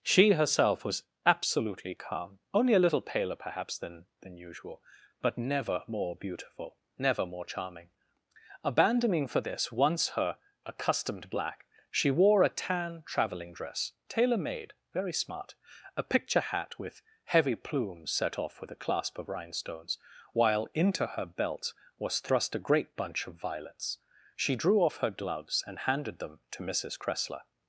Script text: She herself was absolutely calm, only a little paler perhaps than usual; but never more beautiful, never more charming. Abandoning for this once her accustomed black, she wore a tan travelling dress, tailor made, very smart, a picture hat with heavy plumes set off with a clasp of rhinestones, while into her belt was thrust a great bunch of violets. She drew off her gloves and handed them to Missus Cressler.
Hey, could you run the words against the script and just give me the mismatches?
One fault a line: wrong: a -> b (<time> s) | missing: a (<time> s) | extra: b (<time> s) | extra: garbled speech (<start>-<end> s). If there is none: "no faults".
extra: than (4.2 s)